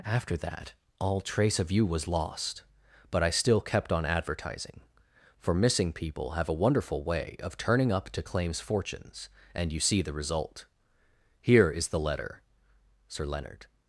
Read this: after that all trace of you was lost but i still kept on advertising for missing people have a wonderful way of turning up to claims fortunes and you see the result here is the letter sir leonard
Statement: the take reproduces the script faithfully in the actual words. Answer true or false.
true